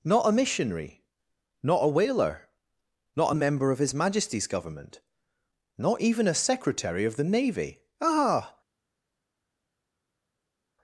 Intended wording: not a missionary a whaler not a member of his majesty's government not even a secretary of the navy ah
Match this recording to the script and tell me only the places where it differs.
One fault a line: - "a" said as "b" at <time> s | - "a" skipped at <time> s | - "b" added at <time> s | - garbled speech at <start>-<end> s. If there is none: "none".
- "not" added at 1.6 s